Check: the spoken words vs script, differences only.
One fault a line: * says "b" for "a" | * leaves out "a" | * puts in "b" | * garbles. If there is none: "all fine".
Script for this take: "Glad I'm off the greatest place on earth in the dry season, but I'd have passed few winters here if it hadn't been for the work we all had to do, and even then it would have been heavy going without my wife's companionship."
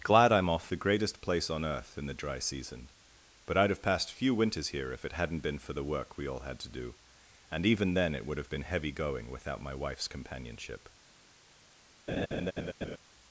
all fine